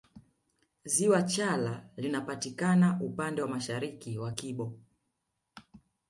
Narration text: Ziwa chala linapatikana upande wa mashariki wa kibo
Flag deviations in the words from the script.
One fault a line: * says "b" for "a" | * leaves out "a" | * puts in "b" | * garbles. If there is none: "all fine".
all fine